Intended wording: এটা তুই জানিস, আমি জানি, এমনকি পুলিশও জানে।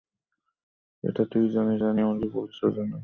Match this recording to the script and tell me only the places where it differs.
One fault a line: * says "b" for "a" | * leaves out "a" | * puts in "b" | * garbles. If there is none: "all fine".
* leaves out "আমি"